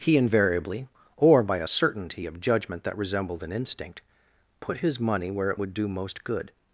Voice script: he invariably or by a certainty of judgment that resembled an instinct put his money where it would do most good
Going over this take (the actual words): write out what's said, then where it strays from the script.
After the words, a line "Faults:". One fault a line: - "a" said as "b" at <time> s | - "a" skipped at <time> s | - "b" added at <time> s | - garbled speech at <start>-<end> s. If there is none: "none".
he invariably or by a certainty of judgment that resembled an instinct put his money where it would do most good
Faults:
none